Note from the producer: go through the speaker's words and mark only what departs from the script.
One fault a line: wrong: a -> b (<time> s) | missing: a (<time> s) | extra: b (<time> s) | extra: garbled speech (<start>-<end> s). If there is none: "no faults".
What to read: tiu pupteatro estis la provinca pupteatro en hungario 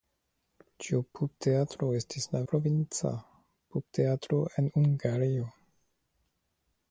no faults